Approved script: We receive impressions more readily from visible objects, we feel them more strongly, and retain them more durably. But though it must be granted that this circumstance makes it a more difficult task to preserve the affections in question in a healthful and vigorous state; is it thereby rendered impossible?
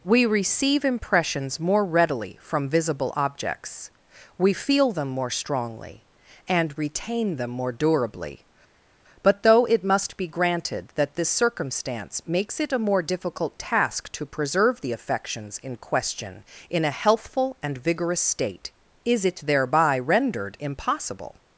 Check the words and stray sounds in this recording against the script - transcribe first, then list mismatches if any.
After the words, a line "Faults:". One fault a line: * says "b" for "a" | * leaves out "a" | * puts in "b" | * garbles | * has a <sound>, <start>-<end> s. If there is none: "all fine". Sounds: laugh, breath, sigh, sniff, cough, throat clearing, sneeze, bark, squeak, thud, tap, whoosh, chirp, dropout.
We receive impressions more readily from visible objects, we feel them more strongly, and retain them more durably. But though it must be granted that this circumstance makes it a more difficult task to preserve the affections in question in a healthful and vigorous state; is it thereby rendered impossible?
Faults:
all fine